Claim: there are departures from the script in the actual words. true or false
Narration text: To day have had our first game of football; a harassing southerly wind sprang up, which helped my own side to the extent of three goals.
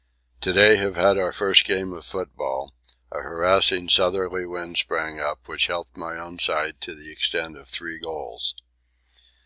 false